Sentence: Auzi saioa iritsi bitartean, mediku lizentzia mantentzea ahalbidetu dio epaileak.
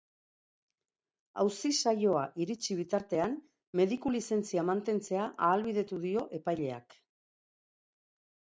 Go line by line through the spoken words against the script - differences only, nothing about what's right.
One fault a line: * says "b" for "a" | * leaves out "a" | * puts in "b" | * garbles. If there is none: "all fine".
all fine